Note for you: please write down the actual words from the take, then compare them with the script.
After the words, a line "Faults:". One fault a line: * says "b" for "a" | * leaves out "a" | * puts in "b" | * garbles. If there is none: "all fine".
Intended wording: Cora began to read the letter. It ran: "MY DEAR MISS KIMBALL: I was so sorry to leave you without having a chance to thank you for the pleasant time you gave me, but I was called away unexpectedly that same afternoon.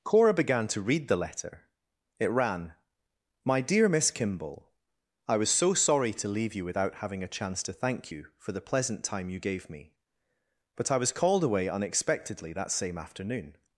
Cora began to read the letter. It ran: "MY DEAR MISS KIMBALL: I was so sorry to leave you without having a chance to thank you for the pleasant time you gave me, but I was called away unexpectedly that same afternoon.
Faults:
all fine